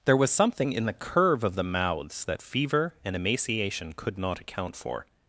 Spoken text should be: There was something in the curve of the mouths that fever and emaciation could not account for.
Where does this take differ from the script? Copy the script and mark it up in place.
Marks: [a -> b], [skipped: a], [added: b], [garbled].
There was something in the curve of the mouths that fever and emaciation could not account for.